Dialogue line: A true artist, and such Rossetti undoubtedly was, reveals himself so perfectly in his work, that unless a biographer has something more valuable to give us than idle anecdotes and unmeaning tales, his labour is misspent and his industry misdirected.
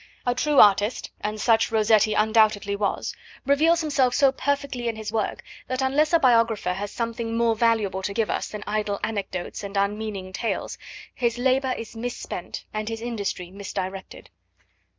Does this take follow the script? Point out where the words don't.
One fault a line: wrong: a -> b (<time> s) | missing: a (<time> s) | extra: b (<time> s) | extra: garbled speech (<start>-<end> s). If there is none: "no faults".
no faults